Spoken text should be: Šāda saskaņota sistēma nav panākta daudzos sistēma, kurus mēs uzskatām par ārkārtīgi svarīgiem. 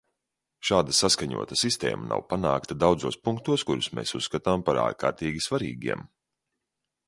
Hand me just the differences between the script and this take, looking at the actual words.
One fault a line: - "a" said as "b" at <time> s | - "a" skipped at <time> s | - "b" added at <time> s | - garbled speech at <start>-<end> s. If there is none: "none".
- "sistēma" said as "punktos" at 3.3 s